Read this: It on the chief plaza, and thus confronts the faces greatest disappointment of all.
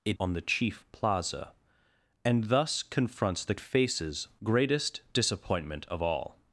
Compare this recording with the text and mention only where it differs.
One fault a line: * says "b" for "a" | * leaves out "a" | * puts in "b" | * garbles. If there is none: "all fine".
all fine